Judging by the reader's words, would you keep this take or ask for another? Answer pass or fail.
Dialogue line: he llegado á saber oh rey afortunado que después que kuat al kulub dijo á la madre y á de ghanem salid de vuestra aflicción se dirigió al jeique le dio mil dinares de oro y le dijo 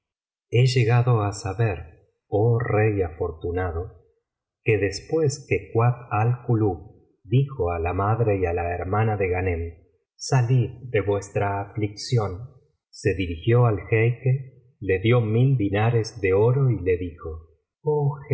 fail